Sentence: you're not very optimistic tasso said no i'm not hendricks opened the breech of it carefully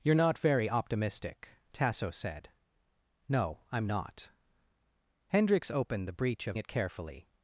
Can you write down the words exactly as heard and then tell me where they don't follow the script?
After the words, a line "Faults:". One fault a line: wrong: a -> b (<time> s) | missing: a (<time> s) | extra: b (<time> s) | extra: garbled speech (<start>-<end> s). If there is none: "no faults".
you're not very optimistic tasso said no i'm not hendricks opened the breech of it carefully
Faults:
no faults